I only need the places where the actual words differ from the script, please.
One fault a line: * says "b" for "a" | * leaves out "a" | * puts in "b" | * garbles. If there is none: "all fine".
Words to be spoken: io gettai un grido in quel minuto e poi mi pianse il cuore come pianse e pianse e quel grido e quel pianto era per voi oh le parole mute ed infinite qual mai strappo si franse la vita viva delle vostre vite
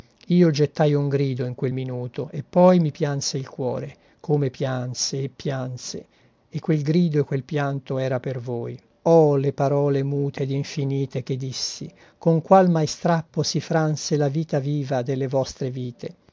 * puts in "che dissi con"